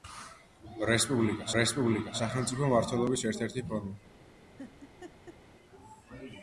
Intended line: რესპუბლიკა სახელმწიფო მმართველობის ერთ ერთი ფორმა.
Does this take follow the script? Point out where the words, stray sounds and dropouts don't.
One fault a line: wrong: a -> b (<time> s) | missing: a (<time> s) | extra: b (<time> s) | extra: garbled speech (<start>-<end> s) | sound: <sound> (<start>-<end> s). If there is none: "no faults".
extra: რესპუბლიკა (1.6 s)
sound: laugh (4.6-5.4 s)